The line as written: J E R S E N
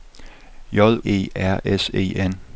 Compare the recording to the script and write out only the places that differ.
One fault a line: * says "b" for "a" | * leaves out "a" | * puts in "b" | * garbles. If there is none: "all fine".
all fine